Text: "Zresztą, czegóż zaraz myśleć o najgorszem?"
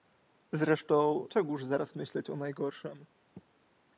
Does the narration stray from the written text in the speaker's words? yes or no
no